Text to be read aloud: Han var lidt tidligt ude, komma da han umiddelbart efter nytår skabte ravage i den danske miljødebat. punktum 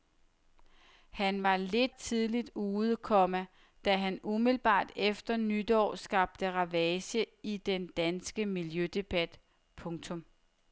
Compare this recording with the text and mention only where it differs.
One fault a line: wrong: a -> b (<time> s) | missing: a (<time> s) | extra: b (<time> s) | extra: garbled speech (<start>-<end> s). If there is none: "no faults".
no faults